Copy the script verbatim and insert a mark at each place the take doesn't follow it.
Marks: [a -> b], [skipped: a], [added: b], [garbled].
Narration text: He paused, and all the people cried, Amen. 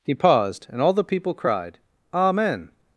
He paused, and all the people cried, Amen.